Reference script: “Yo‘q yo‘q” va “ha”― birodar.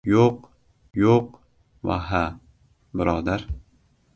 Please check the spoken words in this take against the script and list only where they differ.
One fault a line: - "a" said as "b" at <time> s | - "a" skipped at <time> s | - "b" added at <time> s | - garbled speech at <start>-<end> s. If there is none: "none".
none